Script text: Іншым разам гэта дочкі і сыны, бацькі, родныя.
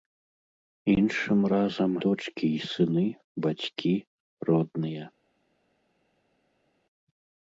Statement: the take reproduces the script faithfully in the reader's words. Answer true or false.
false